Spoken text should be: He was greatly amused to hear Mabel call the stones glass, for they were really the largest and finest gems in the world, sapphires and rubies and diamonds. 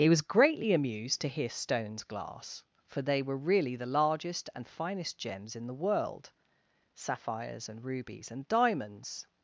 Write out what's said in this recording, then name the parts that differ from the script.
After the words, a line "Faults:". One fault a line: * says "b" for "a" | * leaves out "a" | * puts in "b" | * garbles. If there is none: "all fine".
He was greatly amused to hear stones glass, for they were really the largest and finest gems in the world, sapphires and rubies and diamonds.
Faults:
* leaves out "Mabel call the"